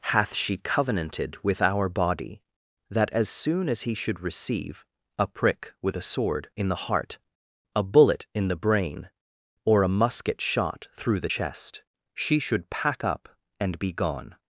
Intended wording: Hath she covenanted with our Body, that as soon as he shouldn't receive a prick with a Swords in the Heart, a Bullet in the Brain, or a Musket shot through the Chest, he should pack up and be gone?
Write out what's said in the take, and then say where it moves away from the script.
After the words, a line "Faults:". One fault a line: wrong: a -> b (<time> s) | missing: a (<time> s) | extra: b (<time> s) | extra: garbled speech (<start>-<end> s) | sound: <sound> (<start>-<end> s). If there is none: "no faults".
Hath she covenanted with our Body, that as soon as he should receive a prick with a Sword in the Heart, a Bullet in the Brain, or a Musket shot through the Chest, she should pack up and be gone?
Faults:
wrong: shouldn't -> should (3.9 s)
wrong: Swords -> Sword (6.0 s)
wrong: he -> she (12.1 s)